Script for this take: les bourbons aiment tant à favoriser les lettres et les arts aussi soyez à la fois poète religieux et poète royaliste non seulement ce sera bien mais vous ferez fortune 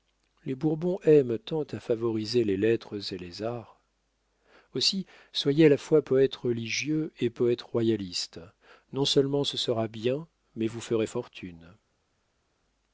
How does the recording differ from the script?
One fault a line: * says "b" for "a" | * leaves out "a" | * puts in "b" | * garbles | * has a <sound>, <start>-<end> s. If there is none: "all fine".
all fine